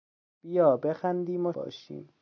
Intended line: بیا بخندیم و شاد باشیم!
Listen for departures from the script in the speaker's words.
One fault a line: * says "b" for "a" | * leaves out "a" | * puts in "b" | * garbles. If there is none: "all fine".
* leaves out "شاد"